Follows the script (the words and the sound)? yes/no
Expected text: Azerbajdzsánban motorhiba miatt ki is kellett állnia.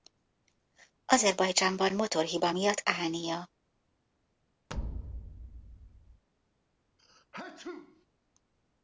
no